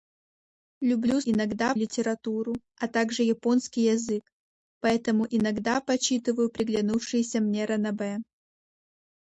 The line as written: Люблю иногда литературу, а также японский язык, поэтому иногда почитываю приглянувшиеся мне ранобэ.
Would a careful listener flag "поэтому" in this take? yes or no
no